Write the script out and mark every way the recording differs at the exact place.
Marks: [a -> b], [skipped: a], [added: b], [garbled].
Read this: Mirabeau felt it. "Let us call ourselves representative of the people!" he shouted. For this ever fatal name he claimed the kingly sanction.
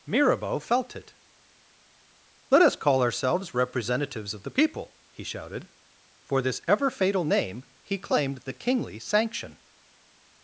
Mirabeau felt it. "Let us call ourselves [representative -> representatives] of the people!" he shouted. For this ever fatal name he claimed the kingly sanction.